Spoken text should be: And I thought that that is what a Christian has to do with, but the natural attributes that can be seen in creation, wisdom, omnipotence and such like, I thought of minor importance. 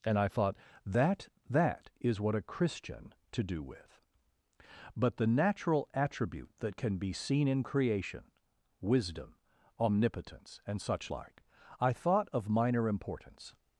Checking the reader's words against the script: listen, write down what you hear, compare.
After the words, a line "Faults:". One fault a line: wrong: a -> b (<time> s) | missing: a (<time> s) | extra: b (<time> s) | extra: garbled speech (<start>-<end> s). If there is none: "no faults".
And I thought that that is what a Christian to do with, but the natural attribute that can be seen in creation, wisdom, omnipotence and such like, I thought of minor importance.
Faults:
missing: has (3.1 s)
wrong: attributes -> attribute (5.9 s)